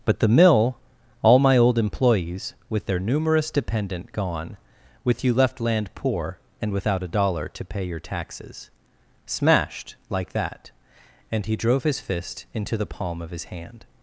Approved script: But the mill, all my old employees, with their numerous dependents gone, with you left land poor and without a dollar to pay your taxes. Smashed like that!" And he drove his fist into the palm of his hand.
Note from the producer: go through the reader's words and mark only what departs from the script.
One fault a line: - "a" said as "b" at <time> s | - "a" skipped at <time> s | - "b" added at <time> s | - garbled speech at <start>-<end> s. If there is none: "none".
- "dependents" said as "dependent" at 3.5 s